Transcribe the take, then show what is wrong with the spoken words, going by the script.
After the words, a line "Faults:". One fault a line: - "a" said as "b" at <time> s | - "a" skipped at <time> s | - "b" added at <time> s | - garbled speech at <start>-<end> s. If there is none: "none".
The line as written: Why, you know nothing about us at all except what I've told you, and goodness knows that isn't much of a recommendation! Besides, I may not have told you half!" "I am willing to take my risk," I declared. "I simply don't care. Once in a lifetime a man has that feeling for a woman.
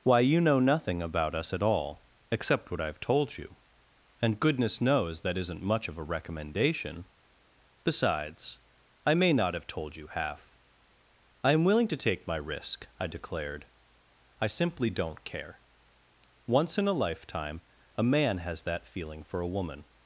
Why, you know nothing about us at all except what I've told you, and goodness knows that isn't much of a recommendation! Besides, I may not have told you half!" "I am willing to take my risk," I declared. "I simply don't care. Once in a lifetime a man has that feeling for a woman.
Faults:
none